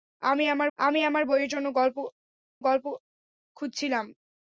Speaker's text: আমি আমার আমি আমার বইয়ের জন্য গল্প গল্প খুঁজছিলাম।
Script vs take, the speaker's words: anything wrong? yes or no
no